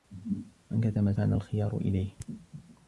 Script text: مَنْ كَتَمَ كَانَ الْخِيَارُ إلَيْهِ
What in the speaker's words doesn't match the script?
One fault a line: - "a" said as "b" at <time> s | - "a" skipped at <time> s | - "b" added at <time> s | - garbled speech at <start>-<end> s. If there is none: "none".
none